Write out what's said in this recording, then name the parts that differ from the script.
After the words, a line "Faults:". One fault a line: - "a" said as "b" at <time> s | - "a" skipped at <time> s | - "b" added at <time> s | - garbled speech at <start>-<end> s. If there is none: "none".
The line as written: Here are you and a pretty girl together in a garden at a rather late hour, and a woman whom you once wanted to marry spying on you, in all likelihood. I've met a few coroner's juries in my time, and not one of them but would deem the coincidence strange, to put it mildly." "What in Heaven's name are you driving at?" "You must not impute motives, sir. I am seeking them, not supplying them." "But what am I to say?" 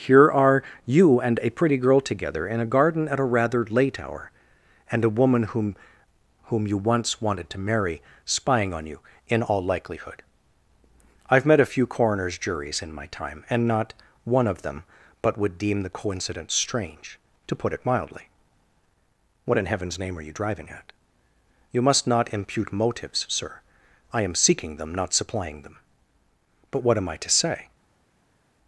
Here are you and a pretty girl together in a garden at a rather late hour, and a woman whom whom you once wanted to marry spying on you, in all likelihood. I've met a few coroner's juries in my time, and not one of them but would deem the coincidence strange, to put it mildly." "What in Heaven's name are you driving at?" "You must not impute motives, sir. I am seeking them, not supplying them." "But what am I to say?"
Faults:
- "whom" added at 6.5 s